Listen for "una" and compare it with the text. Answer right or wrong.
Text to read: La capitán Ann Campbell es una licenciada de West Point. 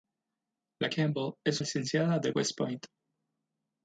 wrong